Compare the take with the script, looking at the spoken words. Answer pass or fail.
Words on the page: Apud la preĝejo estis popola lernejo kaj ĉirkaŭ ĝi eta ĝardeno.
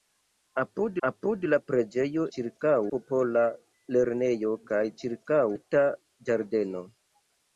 fail